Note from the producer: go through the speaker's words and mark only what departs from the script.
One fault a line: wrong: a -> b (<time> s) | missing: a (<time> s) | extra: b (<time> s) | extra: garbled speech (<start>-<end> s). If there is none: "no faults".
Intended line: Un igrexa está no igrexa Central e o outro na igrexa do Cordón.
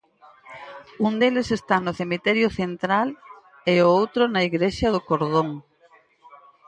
wrong: igrexa -> deles (1.2 s)
wrong: igrexa -> cemiterio (2.0 s)